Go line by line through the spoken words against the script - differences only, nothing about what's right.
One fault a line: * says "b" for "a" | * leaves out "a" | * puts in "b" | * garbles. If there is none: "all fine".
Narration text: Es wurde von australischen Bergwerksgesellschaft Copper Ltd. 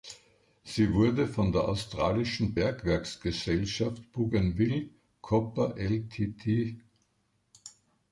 * says "Sie" for "Es"
* puts in "der"
* puts in "Bougainville"